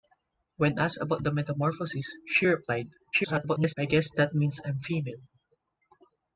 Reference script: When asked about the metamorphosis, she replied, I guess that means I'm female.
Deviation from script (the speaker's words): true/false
true